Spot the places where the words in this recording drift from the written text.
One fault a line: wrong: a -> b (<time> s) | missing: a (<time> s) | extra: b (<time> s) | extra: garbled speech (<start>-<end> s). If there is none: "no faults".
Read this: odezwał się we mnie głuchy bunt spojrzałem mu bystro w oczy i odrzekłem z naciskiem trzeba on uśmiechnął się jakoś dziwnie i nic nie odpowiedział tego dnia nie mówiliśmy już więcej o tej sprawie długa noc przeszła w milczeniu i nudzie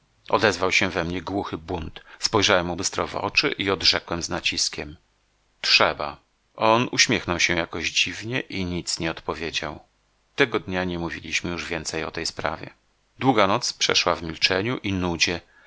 no faults